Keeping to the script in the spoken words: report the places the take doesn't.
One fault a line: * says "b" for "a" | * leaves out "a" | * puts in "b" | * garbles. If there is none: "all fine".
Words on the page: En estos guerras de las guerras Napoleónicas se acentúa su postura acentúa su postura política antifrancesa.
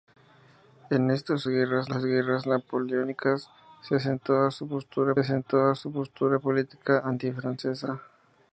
all fine